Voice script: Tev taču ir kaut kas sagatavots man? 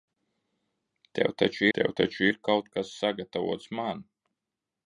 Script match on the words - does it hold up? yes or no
no